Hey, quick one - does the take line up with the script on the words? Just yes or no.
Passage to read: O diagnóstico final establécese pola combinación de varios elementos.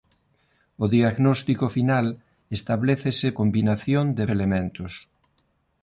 no